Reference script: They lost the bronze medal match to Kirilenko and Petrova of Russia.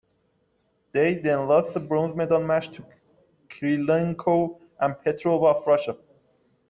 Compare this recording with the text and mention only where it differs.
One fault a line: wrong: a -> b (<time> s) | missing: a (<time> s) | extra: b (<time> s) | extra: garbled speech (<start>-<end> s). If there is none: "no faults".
extra: then (1.1 s)